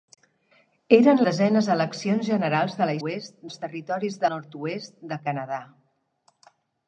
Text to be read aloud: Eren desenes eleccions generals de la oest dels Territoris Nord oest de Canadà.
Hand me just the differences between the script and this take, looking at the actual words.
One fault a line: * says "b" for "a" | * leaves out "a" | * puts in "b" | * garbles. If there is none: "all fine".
all fine